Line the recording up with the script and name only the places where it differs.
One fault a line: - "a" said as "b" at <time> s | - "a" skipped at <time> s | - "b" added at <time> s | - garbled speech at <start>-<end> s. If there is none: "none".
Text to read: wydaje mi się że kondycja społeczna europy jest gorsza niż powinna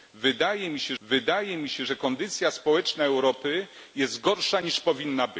- "wydaje mi się" added at 1.0 s